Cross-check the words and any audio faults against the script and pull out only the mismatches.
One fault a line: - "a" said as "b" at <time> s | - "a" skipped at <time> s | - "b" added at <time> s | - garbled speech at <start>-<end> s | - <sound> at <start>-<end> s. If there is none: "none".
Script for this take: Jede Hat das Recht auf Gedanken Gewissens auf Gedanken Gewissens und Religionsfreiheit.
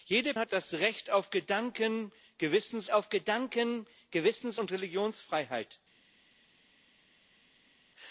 none